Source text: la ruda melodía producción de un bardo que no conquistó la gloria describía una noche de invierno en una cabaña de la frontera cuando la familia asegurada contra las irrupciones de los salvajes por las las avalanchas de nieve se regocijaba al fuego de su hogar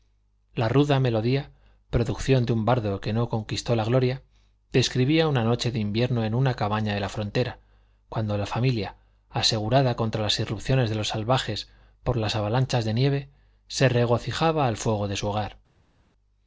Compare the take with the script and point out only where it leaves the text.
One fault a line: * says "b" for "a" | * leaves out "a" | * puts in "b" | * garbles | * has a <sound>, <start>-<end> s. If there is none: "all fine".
* leaves out "las"